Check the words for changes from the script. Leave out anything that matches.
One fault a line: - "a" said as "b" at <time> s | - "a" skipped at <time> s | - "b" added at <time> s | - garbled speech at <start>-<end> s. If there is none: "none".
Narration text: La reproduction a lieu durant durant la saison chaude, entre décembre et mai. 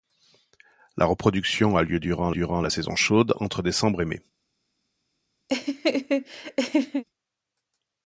none